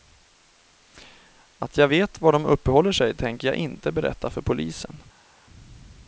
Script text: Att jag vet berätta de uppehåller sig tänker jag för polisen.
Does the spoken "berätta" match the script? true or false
false